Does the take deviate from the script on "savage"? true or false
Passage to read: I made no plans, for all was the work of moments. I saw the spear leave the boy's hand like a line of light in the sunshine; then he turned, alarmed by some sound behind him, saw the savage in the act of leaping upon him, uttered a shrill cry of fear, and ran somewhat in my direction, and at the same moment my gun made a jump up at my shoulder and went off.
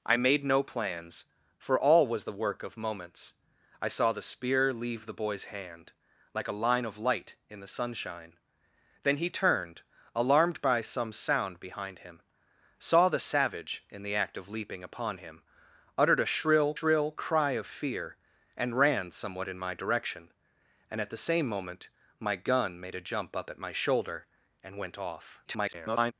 false